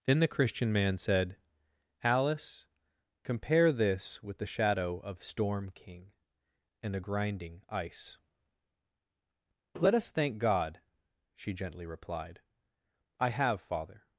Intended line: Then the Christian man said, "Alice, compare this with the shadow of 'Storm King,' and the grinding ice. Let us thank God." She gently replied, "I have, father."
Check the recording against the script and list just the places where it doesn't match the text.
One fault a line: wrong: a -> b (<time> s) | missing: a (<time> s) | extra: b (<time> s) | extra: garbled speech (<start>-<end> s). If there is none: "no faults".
wrong: the -> a (6.9 s)